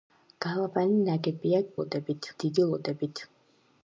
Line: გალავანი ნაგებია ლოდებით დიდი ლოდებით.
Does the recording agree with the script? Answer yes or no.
yes